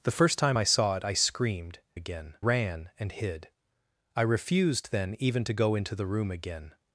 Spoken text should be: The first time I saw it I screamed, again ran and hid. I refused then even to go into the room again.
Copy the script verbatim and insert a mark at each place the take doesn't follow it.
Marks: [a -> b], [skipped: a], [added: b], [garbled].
The first time I saw it I screamed, again ran and hid. I refused then even to go into the room again.